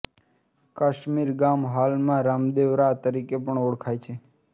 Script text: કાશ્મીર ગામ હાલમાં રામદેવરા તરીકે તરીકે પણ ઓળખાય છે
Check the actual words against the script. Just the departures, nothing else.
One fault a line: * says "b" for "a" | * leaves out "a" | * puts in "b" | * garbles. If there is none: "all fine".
* leaves out "તરીકે"